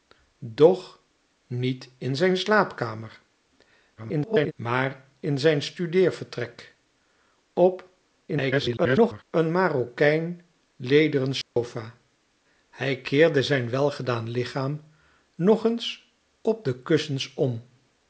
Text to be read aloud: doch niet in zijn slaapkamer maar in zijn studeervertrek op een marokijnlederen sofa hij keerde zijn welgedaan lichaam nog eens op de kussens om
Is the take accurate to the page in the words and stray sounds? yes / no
no